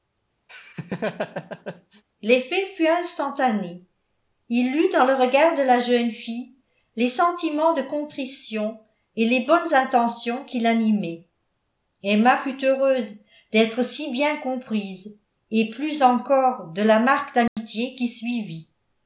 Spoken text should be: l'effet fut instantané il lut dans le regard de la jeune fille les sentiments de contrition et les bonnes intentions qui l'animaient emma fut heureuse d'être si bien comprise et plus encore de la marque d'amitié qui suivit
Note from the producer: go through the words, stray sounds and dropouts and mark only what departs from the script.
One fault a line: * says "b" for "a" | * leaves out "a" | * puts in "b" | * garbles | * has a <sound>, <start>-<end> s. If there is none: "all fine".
* has a laugh, 0.5-2.0 s
* has a dropout, 17.5-17.6 s